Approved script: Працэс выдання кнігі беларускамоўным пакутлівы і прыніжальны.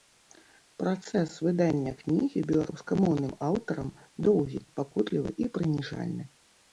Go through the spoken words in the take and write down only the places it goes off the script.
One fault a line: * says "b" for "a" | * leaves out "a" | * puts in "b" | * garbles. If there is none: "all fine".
* puts in "аўтарам доўгі"